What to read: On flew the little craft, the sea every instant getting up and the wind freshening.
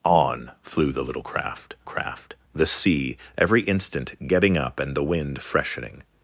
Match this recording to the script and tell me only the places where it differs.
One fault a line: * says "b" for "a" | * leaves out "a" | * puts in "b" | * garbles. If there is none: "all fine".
* puts in "craft"